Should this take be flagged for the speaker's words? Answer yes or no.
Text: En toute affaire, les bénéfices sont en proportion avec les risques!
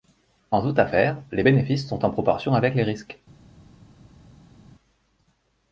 no